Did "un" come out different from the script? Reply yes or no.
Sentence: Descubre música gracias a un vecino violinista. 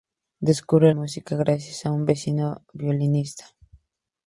no